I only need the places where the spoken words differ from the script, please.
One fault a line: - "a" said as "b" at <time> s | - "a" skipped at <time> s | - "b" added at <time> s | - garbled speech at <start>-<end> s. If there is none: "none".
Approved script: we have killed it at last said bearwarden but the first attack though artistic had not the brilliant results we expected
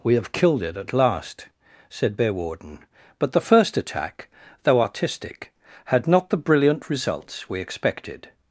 none